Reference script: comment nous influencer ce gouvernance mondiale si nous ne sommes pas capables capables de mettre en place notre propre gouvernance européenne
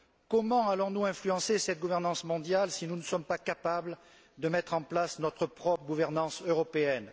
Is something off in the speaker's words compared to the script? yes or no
yes